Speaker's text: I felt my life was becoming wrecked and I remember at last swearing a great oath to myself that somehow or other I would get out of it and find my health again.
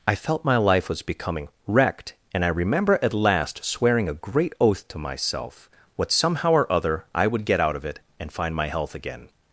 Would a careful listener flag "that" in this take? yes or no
yes